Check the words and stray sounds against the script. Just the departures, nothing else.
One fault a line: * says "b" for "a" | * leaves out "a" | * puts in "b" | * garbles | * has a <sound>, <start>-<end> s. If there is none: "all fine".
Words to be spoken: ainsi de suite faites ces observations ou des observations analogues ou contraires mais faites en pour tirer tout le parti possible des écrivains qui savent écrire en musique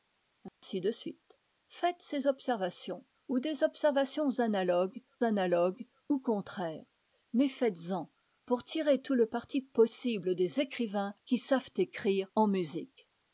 * has a dropout, 0.5-0.6 s
* puts in "analogues"